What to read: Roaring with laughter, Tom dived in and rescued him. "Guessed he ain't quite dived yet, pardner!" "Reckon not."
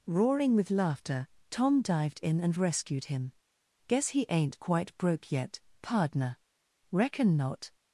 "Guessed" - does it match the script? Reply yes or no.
no